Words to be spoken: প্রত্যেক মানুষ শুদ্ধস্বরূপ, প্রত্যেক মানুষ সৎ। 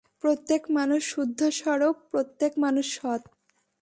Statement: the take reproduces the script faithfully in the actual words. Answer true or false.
true